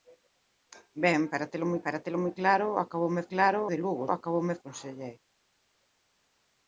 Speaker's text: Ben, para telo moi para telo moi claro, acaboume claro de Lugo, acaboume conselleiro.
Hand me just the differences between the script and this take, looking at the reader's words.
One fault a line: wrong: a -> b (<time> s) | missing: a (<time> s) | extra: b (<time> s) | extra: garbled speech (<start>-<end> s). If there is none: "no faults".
no faults